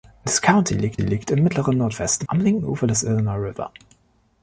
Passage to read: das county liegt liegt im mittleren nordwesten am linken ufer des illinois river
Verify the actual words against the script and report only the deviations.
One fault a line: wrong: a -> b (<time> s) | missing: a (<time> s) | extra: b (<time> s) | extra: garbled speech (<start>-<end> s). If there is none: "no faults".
no faults